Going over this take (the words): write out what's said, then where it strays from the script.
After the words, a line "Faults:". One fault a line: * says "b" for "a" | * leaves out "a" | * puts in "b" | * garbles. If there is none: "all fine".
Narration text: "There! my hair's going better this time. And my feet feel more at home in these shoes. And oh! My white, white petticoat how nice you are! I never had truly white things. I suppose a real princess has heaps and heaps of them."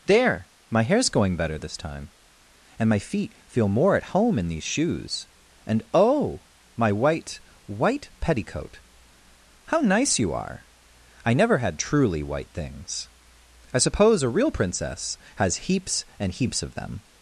"There! my hair's going better this time. And my feet feel more at home in these shoes. And oh! My white, white petticoat how nice you are! I never had truly white things. I suppose a real princess has heaps and heaps of them."
Faults:
all fine